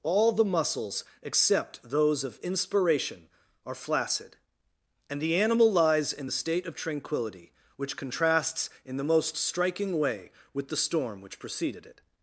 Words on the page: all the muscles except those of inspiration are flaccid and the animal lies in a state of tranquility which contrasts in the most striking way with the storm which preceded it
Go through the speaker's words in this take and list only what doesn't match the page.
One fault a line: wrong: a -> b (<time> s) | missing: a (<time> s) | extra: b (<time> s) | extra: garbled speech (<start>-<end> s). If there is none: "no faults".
wrong: a -> the (6.2 s)